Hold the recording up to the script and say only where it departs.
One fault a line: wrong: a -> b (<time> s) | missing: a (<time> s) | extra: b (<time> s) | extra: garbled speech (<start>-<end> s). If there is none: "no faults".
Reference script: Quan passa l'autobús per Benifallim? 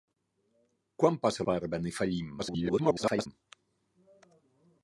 missing: l'autobús (1.4 s)
extra: garbled speech (2.4-3.3 s)